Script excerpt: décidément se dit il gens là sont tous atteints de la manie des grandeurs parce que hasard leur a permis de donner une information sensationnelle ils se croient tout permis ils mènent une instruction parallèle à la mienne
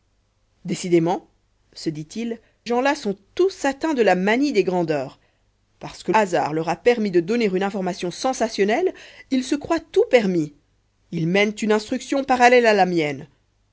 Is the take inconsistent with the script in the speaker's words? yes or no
no